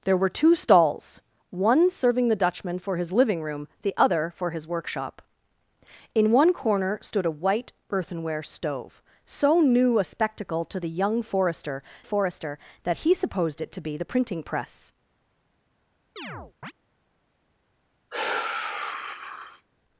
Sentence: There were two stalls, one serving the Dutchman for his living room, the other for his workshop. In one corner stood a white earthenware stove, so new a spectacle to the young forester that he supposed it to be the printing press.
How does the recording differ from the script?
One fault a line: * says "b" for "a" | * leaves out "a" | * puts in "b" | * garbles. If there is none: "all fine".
* puts in "forester"